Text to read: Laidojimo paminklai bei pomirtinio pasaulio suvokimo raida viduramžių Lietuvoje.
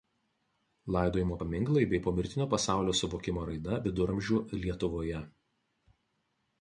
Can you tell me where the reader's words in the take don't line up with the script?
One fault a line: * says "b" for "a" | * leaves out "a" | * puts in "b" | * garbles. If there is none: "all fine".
all fine